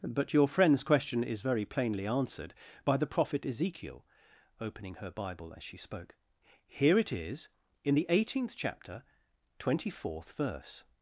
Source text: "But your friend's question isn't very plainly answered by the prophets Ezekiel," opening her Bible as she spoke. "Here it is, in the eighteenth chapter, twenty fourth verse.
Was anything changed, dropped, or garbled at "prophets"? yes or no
yes